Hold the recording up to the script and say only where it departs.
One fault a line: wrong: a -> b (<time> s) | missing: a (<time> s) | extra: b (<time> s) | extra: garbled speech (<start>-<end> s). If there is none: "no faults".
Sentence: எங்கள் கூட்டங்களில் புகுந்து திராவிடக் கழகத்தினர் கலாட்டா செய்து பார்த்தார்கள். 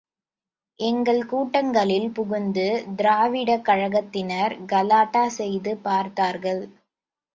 no faults